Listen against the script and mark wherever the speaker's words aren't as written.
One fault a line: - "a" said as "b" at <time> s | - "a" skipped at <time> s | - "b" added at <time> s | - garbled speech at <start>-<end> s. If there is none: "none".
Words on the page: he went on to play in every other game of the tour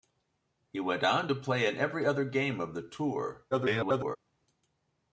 - garbled speech at 3.5-4.2 s